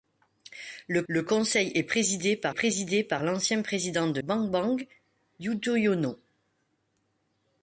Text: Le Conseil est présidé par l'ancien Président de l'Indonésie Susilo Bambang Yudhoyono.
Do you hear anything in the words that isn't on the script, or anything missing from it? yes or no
yes